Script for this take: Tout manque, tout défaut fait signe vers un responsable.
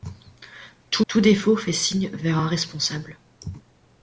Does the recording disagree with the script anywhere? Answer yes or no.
yes